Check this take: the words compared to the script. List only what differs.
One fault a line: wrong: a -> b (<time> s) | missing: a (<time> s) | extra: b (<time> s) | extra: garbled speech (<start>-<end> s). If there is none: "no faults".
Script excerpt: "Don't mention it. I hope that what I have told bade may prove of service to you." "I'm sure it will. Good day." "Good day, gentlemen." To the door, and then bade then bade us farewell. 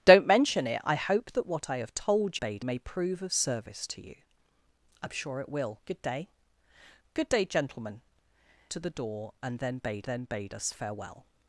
no faults